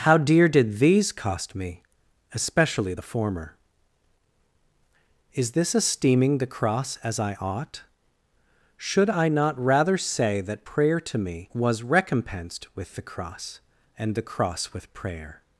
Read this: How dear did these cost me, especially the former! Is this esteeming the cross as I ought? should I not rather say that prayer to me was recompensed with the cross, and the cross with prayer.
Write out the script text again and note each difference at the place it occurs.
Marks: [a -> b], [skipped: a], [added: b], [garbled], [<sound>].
How dear did these cost me, especially the former! Is this esteeming the cross as I ought? should I not rather say that prayer to me was recompensed with the cross, and the cross with prayer.